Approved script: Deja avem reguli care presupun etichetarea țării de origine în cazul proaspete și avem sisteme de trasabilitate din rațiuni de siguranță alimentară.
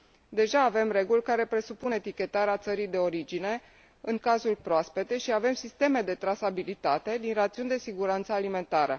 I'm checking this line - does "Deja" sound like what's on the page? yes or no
yes